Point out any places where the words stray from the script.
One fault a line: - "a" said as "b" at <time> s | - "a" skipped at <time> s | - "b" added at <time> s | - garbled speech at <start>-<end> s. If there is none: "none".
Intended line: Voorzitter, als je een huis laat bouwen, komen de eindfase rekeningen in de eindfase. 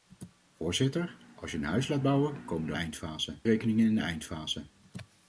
none